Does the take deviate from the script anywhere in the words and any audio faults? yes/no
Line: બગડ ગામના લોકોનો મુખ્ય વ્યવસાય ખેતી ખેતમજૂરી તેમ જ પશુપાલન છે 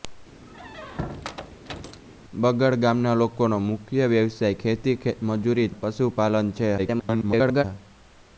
yes